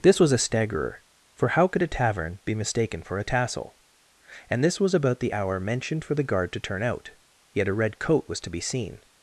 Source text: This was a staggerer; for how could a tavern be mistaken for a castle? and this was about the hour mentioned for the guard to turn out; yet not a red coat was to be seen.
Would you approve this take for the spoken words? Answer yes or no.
no